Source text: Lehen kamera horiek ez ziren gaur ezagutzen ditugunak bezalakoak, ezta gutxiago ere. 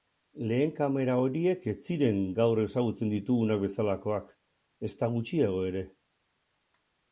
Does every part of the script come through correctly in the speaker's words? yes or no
yes